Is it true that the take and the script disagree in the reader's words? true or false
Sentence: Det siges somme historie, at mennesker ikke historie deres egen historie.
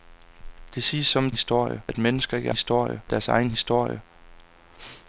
false